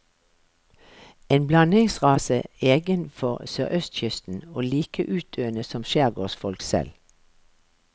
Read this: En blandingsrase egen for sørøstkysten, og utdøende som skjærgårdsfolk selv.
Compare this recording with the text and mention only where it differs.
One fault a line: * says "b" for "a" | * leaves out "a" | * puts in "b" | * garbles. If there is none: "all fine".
* puts in "like"